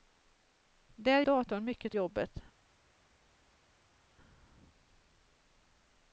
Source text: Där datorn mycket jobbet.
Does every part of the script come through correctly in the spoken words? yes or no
yes